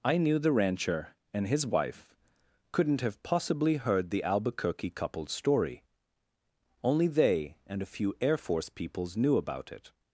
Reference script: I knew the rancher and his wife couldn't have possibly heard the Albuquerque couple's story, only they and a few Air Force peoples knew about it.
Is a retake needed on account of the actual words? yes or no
no